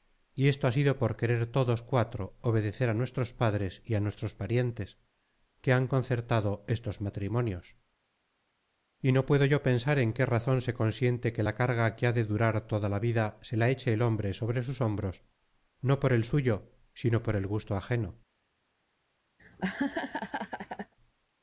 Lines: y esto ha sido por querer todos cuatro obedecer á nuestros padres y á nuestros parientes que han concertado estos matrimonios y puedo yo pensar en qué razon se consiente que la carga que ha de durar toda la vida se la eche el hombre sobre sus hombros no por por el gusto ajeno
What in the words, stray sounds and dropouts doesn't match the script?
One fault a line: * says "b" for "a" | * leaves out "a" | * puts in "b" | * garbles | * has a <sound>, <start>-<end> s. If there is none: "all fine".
* puts in "no"
* puts in "el suyo sino"
* has a laugh, 19.4-20.9 s